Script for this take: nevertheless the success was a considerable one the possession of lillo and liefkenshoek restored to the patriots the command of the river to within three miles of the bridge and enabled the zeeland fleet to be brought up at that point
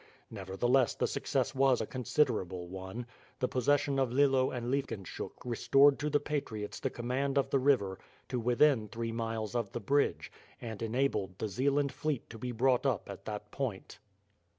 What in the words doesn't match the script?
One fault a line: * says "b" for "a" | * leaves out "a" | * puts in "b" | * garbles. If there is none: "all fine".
all fine